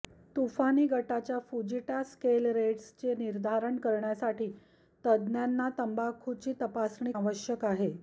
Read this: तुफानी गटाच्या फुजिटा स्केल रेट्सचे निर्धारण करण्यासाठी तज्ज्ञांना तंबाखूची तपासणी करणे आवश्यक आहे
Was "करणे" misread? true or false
true